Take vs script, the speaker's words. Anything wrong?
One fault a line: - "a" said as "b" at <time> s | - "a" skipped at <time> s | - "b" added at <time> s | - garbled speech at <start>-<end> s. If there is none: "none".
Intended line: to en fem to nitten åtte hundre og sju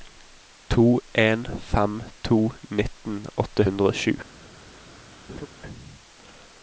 none